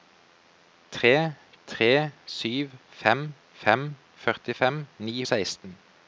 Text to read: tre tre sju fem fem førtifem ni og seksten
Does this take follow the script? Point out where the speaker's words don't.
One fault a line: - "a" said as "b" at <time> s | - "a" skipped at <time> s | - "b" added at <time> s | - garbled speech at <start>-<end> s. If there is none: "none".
none